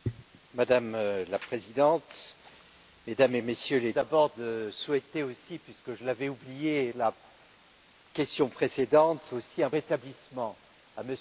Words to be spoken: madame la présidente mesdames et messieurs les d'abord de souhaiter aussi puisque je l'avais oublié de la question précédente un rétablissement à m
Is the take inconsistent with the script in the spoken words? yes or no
no